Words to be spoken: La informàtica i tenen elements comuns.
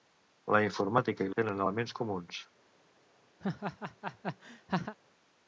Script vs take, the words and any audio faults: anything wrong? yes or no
yes